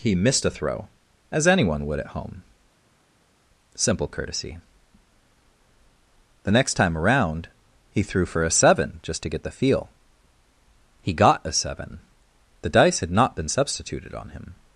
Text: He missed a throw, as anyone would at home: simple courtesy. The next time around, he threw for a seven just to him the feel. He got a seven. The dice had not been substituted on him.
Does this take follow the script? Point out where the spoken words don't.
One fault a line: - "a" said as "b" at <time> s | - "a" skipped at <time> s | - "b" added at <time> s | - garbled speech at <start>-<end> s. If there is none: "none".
- "him" said as "get" at 9.3 s